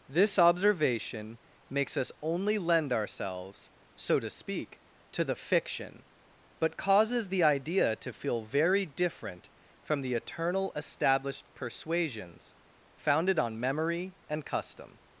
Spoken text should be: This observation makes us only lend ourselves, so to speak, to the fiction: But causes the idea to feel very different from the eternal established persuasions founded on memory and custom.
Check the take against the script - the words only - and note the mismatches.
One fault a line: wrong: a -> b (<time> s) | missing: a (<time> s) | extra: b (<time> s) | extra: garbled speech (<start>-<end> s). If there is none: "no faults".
no faults